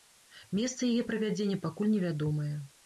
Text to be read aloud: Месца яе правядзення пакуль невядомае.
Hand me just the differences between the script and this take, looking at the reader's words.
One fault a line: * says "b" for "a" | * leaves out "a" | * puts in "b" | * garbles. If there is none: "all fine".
all fine